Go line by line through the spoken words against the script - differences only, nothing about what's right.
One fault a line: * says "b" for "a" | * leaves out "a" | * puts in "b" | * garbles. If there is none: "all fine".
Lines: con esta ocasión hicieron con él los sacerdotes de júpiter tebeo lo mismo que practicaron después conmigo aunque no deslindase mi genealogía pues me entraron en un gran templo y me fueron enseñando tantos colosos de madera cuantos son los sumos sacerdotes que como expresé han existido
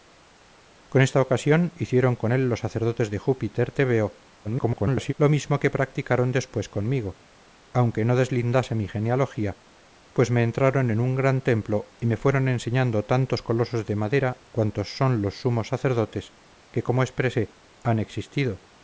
* garbles